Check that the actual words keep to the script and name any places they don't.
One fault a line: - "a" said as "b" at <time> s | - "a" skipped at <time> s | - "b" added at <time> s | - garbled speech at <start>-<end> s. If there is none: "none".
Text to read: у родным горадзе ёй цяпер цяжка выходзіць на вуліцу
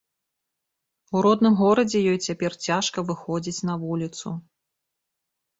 none